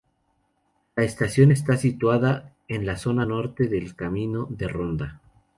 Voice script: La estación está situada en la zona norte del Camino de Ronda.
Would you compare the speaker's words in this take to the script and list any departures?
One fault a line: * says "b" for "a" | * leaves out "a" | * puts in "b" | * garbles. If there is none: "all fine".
all fine